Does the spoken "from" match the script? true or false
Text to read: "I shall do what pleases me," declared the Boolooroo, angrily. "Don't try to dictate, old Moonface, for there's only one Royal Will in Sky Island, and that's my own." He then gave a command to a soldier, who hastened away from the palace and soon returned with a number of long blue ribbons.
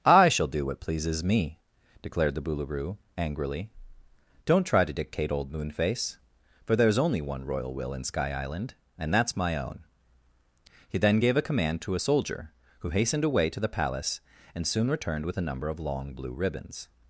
false